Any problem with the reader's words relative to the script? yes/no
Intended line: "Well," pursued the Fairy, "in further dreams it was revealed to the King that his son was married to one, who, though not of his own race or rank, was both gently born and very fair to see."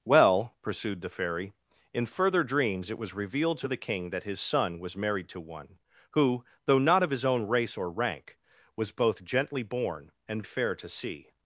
yes